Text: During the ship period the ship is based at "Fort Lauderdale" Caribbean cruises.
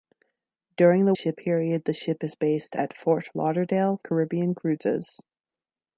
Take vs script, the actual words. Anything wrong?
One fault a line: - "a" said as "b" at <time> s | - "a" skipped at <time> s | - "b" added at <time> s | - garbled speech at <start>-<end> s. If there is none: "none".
none